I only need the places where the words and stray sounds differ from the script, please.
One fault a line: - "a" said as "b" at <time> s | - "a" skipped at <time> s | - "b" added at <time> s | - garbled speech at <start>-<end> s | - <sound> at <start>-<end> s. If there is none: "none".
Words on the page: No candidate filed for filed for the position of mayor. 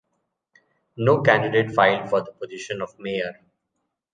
- "filed for" skipped at 2.2 s